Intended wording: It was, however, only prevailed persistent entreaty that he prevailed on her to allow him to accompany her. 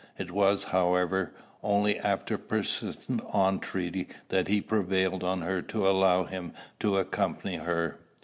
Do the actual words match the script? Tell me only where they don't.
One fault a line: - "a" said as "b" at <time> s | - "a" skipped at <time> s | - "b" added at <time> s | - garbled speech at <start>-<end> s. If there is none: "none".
- "prevailed" said as "after" at 2.0 s